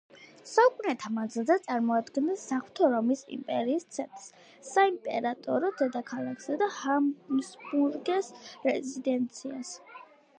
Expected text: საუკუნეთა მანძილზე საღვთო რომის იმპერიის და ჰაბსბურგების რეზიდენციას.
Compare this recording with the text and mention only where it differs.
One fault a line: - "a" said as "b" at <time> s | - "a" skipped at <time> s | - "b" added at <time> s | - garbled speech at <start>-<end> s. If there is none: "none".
- "წარმოადგენდა" added at 1.6 s
- "ცენტრს საიმპერატორო დედაქალაქსა" added at 4.0 s